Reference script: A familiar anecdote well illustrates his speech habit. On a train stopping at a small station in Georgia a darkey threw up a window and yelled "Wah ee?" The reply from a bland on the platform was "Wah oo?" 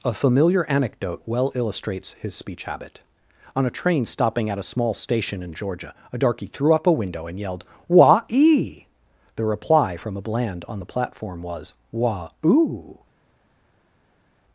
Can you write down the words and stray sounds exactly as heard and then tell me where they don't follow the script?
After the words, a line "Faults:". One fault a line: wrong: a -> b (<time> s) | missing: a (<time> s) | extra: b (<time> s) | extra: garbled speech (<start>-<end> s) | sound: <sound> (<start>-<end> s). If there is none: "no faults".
A familiar anecdote well illustrates his speech habit. On a train stopping at a small station in Georgia a darkey threw up a window and yelled "Wah ee?" The reply from a bland on the platform was "Wah oo?"
Faults:
no faults